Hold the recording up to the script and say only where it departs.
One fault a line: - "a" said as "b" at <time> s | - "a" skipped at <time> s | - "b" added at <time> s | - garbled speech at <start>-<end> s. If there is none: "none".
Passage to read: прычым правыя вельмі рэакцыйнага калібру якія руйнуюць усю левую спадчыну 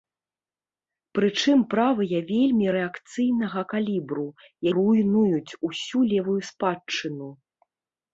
- "якія" skipped at 4.2 s